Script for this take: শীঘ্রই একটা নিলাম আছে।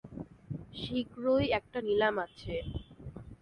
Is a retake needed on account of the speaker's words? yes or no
no